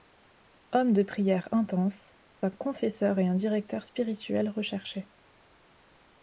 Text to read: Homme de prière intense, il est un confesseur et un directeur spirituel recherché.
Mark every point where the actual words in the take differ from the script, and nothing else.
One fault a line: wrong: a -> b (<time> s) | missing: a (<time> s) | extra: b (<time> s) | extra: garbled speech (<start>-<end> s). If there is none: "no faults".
missing: il est (2.1 s)